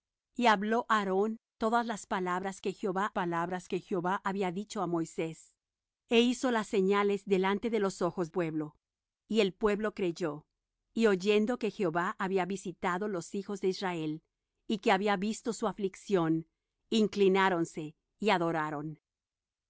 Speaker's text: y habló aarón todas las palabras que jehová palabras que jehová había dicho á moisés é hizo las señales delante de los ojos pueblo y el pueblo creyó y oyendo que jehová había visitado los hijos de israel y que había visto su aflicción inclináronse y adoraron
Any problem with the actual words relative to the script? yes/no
no